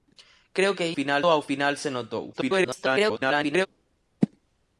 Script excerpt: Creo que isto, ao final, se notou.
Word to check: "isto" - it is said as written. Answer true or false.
false